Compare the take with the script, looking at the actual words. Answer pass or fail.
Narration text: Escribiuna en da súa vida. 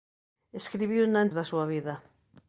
pass